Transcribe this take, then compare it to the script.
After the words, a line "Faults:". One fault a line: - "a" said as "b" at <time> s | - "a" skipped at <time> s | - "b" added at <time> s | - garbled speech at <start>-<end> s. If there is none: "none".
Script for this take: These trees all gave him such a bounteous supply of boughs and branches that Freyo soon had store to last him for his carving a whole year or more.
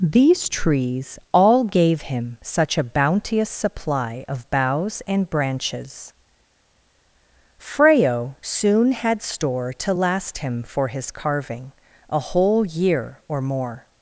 These trees all gave him such a bounteous supply of boughs and branches Freyo soon had store to last him for his carving a whole year or more.
Faults:
- "that" skipped at 6.1 s